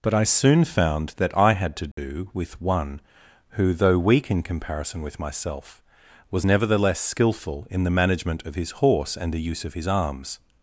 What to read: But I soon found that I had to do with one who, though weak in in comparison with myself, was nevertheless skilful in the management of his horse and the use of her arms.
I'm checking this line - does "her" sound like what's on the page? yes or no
no